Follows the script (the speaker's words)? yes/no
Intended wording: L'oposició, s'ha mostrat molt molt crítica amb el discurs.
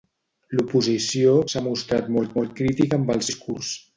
yes